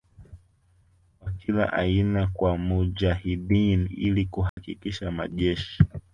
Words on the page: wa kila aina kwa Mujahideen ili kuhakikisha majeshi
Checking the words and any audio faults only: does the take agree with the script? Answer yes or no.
no